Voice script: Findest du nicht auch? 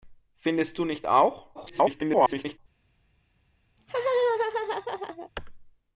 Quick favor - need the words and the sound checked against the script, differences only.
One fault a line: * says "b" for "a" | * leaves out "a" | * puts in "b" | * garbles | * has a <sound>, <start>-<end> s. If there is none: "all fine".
* garbles
* has a laugh, 3.8-5.3 s